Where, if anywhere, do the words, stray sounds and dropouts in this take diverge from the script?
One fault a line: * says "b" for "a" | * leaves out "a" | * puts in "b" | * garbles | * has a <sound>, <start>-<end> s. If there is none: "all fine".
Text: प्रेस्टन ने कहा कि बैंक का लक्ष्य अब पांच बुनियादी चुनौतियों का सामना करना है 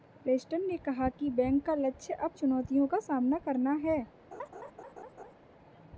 * leaves out "पांच बुनियादी"
* has a laugh, 4.3-5.3 s